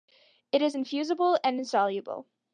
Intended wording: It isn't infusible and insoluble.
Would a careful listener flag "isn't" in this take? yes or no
yes